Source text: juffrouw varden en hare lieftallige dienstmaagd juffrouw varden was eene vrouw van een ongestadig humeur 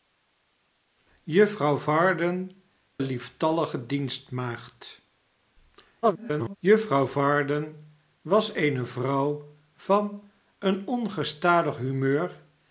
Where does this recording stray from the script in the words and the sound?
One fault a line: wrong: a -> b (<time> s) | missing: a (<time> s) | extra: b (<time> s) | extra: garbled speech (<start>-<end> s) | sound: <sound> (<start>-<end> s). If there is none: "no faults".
missing: en hare (2.5 s)
extra: garbled speech (6.0-6.6 s)